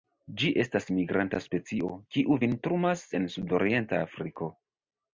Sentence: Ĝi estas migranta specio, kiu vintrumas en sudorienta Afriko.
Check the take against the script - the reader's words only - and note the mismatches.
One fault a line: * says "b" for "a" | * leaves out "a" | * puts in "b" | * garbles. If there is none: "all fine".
all fine